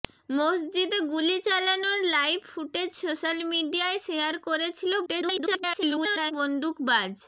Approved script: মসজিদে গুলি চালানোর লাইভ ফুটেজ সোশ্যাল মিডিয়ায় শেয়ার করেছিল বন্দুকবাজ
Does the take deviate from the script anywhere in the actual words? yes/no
yes